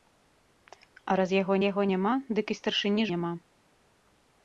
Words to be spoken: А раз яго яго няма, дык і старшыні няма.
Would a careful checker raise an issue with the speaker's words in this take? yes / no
no